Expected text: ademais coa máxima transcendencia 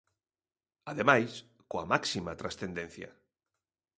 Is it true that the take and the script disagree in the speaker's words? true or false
false